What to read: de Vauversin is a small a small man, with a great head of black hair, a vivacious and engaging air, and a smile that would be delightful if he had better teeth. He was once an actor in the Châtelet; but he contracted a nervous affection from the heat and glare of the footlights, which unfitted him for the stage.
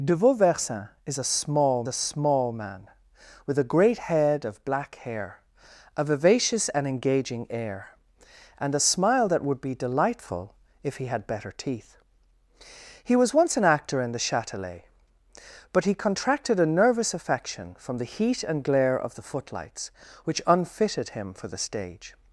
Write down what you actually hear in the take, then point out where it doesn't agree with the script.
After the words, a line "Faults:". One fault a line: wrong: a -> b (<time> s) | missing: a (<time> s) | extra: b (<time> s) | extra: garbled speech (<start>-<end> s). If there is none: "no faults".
de Vauversin is a small a small man, with a great head of black hair, a vivacious and engaging air, and a smile that would be delightful if he had better teeth. He was once an actor in the Châtelet; but he contracted a nervous affection from the heat and glare of the footlights, which unfitted him for the stage.
Faults:
no faults